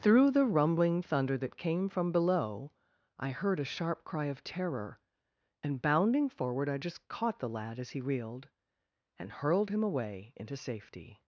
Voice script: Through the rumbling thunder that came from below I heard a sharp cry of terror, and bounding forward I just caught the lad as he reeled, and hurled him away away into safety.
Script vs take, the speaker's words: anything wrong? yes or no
yes